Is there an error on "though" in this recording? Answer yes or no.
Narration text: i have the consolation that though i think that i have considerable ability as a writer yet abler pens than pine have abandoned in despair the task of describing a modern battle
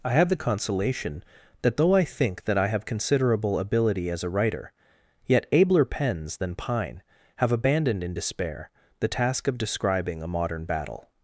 no